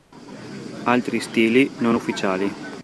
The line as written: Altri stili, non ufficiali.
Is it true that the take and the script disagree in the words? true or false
false